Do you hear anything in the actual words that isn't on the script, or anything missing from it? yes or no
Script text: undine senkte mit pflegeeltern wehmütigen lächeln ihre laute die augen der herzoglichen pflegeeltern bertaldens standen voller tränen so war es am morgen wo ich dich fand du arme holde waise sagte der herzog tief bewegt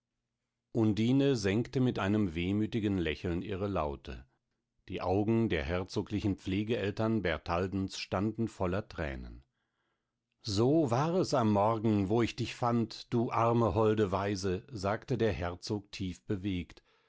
yes